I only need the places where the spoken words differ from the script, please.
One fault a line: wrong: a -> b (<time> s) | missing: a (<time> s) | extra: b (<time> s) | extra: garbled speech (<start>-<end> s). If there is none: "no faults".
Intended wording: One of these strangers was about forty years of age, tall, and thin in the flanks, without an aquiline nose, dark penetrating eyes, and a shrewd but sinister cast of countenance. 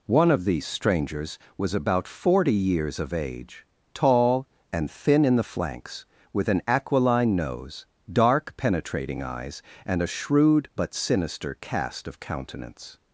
wrong: without -> with (6.3 s)